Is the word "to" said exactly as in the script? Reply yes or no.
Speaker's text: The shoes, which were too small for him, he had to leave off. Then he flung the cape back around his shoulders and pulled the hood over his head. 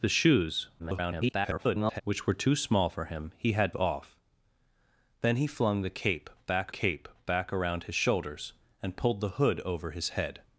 no